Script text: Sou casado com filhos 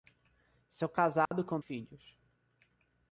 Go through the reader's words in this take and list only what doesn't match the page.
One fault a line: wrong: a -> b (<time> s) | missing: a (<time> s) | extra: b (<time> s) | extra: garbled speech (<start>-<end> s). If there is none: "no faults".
no faults